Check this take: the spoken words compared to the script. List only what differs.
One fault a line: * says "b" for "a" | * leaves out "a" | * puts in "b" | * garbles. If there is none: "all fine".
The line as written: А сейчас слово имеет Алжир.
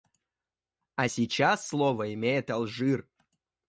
all fine